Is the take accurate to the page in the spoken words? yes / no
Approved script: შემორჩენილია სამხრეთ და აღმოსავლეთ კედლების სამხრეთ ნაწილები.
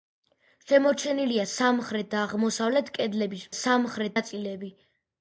yes